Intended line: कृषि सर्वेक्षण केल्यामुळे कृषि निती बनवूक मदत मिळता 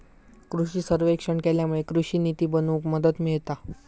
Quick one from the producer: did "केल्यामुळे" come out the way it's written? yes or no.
yes